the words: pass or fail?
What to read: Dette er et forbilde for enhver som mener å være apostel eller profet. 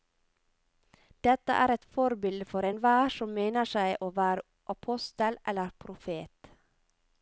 fail